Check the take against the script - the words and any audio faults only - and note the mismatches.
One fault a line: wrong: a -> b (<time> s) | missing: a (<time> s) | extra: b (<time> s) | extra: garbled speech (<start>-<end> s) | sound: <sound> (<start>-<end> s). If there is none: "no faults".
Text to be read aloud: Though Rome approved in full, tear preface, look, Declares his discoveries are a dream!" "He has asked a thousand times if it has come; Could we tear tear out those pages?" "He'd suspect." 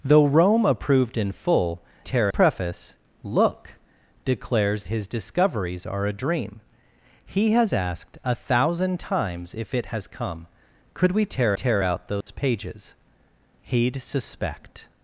sound: dropout (12.2-12.3 s)